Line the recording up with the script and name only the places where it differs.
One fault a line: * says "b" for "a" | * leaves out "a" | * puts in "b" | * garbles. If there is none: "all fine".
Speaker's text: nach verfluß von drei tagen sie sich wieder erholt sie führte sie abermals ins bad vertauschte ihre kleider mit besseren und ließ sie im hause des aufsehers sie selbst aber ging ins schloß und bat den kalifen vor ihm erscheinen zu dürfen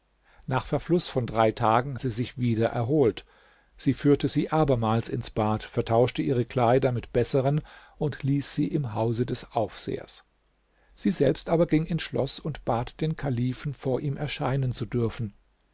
all fine